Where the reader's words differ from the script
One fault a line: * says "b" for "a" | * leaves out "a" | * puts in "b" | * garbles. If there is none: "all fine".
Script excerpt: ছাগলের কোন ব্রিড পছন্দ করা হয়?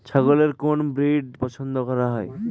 all fine